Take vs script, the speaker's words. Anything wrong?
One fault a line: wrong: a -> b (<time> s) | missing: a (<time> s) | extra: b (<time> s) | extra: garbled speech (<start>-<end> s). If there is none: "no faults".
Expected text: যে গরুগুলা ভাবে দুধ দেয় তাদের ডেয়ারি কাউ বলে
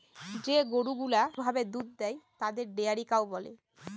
no faults